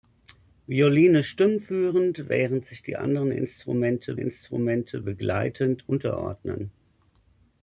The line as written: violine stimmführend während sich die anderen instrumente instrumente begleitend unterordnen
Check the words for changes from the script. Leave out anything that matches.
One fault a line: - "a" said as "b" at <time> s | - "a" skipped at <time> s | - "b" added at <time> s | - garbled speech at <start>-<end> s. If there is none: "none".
none